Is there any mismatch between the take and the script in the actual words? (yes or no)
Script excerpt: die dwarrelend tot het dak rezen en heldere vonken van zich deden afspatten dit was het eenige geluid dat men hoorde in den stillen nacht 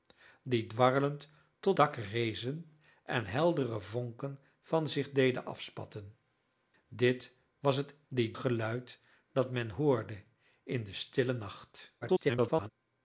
yes